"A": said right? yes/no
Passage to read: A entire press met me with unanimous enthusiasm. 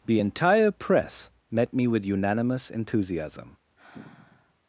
no